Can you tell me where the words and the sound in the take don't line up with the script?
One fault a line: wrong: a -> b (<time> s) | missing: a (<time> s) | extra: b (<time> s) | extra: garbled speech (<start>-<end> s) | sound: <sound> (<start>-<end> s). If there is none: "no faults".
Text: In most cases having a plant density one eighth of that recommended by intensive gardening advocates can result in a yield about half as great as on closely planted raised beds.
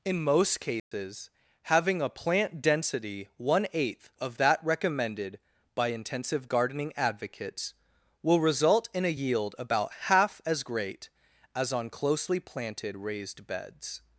sound: dropout (0.8-0.9 s)
wrong: can -> will (8.2 s)